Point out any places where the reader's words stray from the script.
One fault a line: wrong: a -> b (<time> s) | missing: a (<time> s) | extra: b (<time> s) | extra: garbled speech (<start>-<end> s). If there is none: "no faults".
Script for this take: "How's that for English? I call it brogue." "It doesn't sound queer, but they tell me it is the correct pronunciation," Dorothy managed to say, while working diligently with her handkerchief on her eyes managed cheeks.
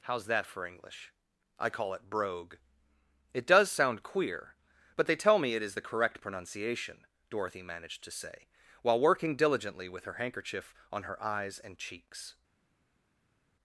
wrong: doesn't -> does (3.5 s)
wrong: managed -> and (11.6 s)